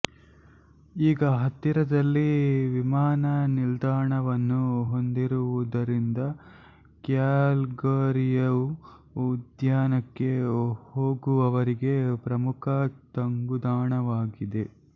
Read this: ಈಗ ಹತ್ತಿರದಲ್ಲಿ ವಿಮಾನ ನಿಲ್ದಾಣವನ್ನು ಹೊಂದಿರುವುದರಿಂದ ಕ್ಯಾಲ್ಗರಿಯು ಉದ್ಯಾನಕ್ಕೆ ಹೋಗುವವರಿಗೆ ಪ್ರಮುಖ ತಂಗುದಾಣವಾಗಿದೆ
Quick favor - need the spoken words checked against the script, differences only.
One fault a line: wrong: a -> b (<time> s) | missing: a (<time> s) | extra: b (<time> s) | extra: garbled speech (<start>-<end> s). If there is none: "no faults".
no faults